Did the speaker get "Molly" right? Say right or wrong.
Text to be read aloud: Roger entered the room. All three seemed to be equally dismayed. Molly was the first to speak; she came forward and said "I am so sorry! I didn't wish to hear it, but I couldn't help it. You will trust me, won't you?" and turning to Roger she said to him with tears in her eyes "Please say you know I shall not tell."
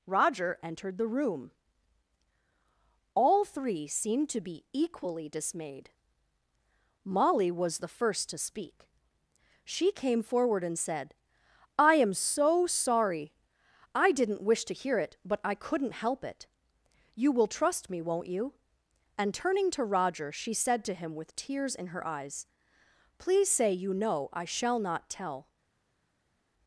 right